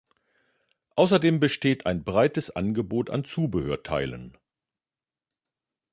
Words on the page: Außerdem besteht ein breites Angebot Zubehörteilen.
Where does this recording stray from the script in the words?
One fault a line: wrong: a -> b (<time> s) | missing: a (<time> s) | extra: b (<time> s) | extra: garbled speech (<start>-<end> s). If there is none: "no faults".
extra: an (3.1 s)